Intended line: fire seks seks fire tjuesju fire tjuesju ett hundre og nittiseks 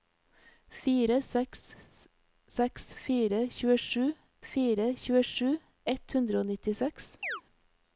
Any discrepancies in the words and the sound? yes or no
yes